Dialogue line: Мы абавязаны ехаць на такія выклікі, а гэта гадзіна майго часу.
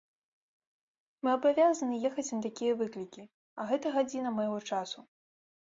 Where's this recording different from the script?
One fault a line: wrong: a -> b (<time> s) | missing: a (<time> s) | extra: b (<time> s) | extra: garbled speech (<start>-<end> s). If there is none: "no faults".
no faults